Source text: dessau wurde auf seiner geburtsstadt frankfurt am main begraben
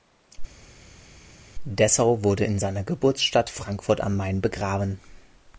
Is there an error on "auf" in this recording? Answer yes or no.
yes